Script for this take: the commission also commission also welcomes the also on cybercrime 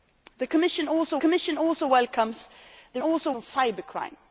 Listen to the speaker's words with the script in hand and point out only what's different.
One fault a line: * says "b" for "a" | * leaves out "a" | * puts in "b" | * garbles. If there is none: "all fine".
all fine